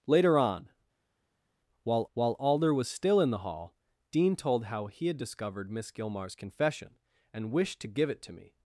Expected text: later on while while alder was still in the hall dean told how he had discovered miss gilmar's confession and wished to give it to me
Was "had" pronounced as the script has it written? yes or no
yes